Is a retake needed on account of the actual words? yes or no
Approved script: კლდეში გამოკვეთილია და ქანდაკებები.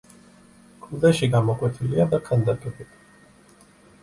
no